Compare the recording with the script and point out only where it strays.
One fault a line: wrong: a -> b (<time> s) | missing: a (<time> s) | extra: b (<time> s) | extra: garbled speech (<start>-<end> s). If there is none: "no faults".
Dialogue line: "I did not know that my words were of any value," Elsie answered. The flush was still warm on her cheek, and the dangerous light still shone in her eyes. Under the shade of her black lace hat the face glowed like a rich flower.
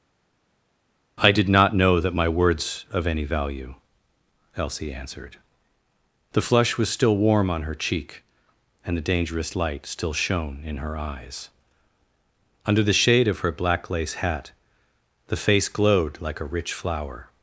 missing: were (2.8 s)